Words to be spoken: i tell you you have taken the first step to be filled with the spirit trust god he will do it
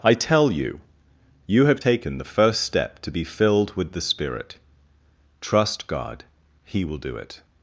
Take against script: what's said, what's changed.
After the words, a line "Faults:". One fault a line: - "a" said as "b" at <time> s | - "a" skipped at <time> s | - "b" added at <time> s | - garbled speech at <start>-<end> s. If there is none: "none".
i tell you you have taken the first step to be filled with the spirit trust god he will do it
Faults:
none